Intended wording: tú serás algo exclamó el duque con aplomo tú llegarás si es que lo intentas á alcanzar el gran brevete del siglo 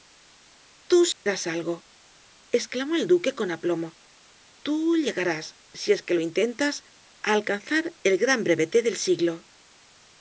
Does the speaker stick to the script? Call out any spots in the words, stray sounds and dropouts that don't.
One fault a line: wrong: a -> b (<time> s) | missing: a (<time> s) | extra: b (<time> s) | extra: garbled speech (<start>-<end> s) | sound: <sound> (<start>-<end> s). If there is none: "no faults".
sound: dropout (1.1-1.3 s)